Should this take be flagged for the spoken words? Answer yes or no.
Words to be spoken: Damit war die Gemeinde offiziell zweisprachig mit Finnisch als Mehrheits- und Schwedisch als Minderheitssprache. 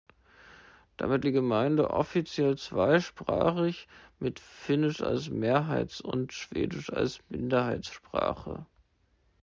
yes